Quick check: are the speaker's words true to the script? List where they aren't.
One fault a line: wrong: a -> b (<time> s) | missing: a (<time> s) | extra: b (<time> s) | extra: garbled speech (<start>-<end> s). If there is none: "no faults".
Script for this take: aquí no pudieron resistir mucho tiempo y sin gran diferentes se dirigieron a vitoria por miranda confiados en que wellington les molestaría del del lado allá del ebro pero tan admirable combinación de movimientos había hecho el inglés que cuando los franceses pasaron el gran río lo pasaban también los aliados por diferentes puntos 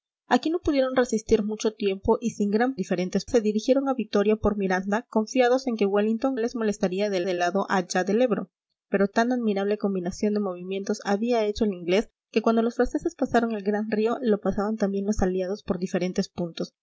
no faults